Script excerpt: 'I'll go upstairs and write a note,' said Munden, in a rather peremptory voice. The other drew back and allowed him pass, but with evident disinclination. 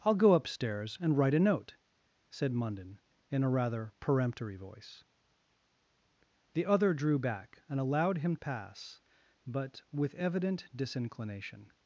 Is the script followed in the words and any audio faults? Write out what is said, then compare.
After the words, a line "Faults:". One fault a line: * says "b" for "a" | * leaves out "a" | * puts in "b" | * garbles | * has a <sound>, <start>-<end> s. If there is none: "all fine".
'I'll go upstairs and write a note,' said Munden, in a rather peremptory voice. The other drew back and allowed him pass, but with evident disinclination.
Faults:
all fine